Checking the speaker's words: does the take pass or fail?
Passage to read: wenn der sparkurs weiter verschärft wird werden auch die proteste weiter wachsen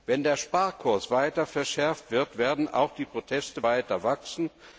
pass